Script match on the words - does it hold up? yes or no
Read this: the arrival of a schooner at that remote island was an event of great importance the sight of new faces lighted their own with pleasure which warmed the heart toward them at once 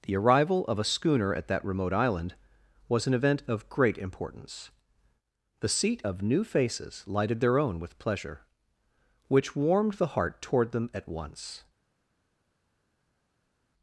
no